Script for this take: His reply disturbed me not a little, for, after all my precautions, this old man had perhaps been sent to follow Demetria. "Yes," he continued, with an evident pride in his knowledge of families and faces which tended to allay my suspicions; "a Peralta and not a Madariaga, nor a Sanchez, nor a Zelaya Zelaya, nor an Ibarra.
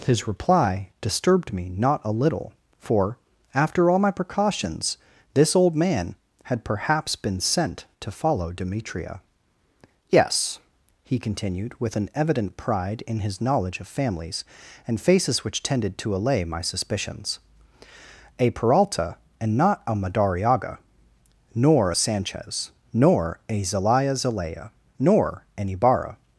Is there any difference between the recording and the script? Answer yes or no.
no